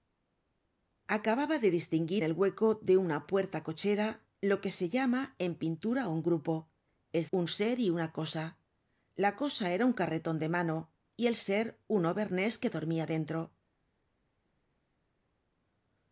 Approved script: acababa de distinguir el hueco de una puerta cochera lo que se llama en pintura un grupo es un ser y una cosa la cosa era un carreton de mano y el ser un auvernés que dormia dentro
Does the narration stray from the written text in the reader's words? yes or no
no